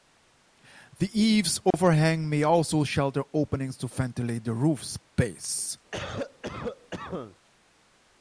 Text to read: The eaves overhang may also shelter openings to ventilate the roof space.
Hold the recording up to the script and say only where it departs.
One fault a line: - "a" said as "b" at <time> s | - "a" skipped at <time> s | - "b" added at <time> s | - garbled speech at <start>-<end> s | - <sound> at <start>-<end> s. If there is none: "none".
- dropout at 1.7-1.7 s
- cough at 5.9-7.4 s